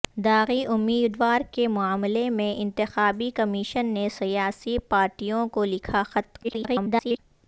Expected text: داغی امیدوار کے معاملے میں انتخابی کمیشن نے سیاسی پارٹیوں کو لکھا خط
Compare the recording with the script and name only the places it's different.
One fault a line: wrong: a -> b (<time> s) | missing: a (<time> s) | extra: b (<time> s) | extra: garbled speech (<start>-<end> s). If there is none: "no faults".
extra: garbled speech (6.4-7.2 s)